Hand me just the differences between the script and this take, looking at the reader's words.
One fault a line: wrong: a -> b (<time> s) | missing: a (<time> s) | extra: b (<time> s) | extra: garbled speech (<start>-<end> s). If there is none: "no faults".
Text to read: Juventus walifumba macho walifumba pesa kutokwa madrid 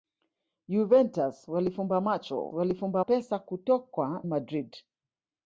no faults